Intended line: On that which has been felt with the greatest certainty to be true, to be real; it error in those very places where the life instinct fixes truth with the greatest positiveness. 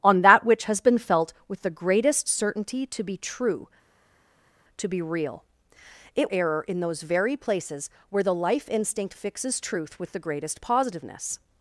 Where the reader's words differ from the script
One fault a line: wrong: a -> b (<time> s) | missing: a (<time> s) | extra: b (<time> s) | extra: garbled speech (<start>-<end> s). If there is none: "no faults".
no faults